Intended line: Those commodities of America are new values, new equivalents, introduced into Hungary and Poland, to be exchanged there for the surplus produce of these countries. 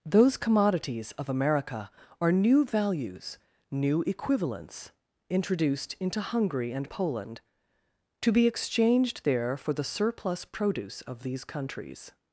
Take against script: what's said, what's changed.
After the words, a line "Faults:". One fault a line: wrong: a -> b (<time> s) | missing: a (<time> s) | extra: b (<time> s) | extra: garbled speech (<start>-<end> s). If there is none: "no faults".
Those commodities of America are new values, new equivalents, introduced into Hungary and Poland, to be exchanged there for the surplus produce of these countries.
Faults:
no faults